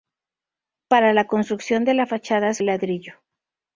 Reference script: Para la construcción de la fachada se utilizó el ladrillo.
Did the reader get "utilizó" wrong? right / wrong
wrong